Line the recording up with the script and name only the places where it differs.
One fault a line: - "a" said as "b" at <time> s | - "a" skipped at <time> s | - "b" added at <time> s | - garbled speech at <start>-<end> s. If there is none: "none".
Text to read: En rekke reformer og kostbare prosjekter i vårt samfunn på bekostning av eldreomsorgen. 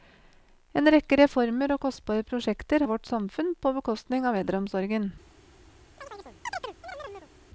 none